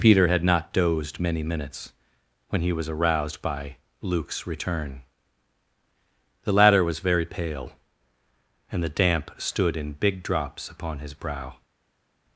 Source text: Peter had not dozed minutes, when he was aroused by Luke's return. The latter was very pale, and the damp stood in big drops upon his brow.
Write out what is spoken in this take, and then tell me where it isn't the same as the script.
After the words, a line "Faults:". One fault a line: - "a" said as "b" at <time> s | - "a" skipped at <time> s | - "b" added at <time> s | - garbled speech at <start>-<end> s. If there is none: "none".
Peter had not dozed many minutes, when he was aroused by Luke's return. The latter was very pale, and the damp stood in big drops upon his brow.
Faults:
- "many" added at 1.2 s